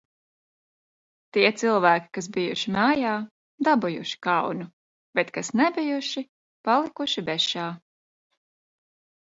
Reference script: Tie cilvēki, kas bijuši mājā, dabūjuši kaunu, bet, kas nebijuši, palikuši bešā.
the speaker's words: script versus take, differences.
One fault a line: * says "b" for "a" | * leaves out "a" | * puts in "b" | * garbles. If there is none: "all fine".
all fine